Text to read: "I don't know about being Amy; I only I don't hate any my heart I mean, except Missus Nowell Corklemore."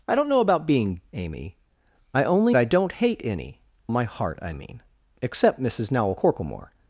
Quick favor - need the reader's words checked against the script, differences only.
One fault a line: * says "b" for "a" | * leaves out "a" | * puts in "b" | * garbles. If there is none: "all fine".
all fine